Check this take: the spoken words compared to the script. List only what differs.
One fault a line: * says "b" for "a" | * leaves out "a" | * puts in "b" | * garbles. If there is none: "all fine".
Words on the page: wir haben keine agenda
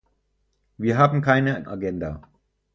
all fine